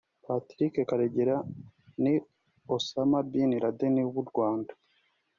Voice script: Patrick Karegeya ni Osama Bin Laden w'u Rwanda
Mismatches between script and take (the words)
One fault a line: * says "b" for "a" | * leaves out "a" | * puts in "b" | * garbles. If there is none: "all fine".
all fine